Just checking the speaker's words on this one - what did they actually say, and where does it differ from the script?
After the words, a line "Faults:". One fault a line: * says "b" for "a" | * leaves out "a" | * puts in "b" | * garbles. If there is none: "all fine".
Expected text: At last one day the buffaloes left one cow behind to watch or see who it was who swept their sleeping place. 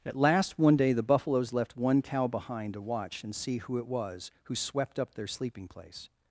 At last one day the buffaloes left one cow behind to watch and see who it was who swept up their sleeping place.
Faults:
* says "and" for "or"
* puts in "up"